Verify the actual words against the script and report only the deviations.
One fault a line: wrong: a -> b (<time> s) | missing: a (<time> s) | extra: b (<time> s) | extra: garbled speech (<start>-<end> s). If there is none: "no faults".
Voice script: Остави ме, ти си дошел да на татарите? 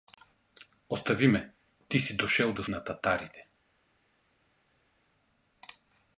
no faults